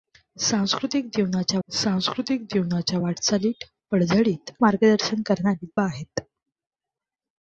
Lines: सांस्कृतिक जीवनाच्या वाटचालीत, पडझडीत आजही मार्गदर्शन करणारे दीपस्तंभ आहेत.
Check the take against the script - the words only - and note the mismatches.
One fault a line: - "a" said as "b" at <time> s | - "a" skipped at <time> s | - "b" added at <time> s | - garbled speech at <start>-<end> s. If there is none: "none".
- "सांस्कृतिक जीवनाच्या" added at 1.7 s
- "आजही" skipped at 4.5 s
- "दीपस्तंभ" skipped at 5.7 s